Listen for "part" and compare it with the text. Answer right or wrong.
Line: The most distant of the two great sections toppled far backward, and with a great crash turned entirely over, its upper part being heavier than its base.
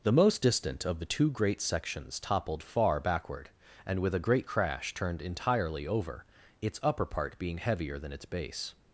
right